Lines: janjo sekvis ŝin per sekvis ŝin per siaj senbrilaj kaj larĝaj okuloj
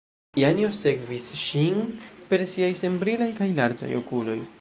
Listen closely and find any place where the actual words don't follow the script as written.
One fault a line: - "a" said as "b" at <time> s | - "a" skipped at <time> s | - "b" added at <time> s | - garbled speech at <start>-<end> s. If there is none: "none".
- "sekvis ŝin per" skipped at 2.5 s